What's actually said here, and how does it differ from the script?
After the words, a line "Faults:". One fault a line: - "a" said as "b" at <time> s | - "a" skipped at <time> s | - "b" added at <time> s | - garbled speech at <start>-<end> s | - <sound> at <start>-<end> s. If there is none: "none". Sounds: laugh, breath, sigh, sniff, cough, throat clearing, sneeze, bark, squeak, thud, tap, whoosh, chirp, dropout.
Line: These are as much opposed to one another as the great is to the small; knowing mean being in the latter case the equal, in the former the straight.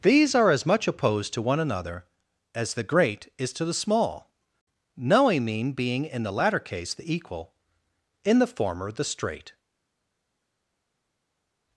These are as much opposed to one another as the great is to the small; knowing mean being in the latter case the equal, in the former the straight.
Faults:
none